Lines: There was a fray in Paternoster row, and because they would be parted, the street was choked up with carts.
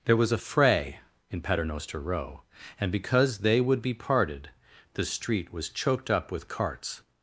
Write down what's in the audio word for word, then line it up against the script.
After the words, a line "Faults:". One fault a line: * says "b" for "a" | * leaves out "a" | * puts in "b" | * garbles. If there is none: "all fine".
There was a fray in Paternoster row, and because they would be parted, the street was choked up with carts.
Faults:
all fine